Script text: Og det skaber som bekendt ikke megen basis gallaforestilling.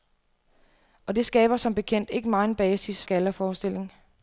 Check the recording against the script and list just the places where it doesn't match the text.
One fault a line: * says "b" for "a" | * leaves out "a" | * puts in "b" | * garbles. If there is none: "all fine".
all fine